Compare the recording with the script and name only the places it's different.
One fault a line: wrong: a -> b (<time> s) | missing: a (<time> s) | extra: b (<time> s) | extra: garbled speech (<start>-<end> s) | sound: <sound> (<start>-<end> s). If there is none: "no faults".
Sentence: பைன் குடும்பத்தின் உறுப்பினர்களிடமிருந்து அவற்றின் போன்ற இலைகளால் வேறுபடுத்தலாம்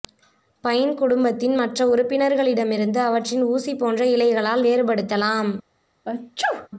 extra: மற்ற (1.6 s)
extra: ஊசி (3.5 s)
sound: sneeze (6.1-6.7 s)